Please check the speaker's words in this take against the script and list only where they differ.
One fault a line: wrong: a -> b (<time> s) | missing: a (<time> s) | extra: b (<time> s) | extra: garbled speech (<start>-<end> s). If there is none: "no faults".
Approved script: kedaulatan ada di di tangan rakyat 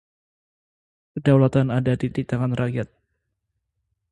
no faults